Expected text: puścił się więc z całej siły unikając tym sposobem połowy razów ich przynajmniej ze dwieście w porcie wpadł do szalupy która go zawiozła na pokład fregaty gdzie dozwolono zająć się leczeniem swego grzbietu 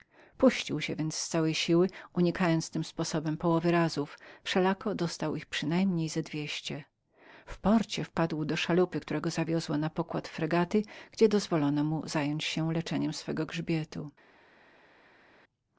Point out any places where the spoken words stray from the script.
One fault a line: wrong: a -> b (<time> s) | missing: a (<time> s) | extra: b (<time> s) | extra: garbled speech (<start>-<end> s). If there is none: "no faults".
extra: wszelako dostał (4.4 s)
extra: mu (11.8 s)